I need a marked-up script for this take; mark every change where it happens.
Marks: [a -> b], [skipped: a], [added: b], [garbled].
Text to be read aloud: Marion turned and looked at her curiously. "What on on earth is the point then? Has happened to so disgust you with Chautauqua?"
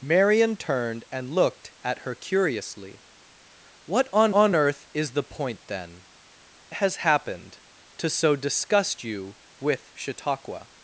Marion turned and looked at her curiously. "What on on earth is the point then? Has happened to so disgust you with Chautauqua?"